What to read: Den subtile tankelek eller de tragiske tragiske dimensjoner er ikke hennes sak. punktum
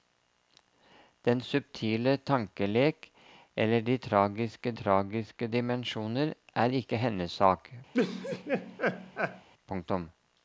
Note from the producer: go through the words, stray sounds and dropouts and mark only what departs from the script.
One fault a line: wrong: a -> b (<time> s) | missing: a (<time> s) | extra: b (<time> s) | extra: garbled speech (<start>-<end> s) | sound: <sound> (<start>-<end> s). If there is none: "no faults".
sound: laugh (7.9-9.5 s)